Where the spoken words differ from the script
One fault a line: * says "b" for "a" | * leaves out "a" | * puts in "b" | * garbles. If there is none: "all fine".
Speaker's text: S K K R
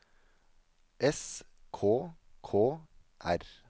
all fine